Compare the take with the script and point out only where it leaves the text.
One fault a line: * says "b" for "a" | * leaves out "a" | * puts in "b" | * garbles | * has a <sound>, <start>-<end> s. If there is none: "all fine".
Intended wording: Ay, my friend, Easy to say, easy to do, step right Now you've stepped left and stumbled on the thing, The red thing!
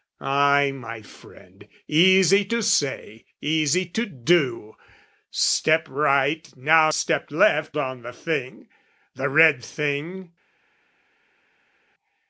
* leaves out "you've"
* leaves out "and stumbled"